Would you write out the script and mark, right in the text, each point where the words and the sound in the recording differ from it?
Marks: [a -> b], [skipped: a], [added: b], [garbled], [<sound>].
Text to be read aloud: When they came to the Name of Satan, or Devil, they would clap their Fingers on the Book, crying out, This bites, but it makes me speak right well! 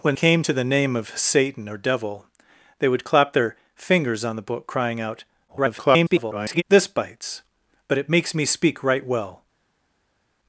When [skipped: they] came to the Name of Satan, or Devil, they would clap their Fingers on the Book, crying out, [garbled] This bites, but it makes me speak right well!